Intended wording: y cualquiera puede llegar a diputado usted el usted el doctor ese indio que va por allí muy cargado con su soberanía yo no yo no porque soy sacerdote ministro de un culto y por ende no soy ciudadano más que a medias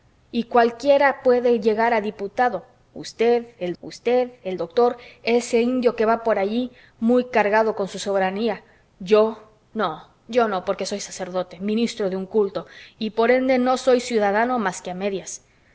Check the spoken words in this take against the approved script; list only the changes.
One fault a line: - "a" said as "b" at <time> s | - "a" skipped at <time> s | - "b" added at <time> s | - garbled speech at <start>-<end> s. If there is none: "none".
none